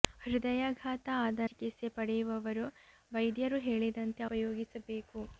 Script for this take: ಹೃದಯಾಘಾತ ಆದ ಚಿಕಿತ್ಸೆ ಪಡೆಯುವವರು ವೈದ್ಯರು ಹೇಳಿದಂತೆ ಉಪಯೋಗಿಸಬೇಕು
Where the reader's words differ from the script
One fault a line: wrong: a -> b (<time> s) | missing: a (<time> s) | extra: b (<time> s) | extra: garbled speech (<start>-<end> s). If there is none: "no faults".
no faults